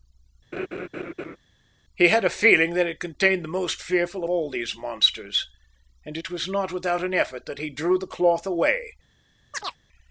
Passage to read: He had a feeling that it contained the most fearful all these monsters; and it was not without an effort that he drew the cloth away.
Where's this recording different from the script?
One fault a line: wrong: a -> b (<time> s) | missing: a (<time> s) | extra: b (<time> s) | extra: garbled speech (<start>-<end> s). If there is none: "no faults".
no faults